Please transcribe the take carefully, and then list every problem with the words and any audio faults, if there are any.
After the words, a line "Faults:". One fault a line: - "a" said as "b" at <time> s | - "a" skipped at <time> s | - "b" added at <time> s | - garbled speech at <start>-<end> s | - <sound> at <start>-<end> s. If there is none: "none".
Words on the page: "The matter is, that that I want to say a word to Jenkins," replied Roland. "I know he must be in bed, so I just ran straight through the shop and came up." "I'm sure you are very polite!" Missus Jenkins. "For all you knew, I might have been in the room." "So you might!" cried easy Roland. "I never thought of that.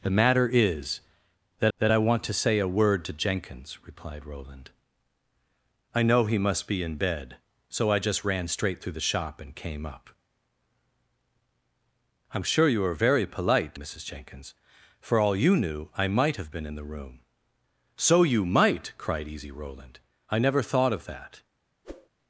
"The matter is, that that I want to say a word to Jenkins," replied Roland. "I know he must be in bed, so I just ran straight through the shop and came up." "I'm sure you are very polite!" Missus Jenkins. "For all you knew, I might have been in the room." "So you might!" cried easy Roland. "I never thought of that.
Faults:
- whoosh at 21.8-22.1 s